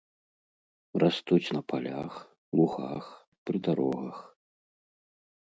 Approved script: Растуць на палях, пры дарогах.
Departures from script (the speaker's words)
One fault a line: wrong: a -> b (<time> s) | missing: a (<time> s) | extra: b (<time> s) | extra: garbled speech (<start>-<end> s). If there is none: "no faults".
extra: лугах (2.6 s)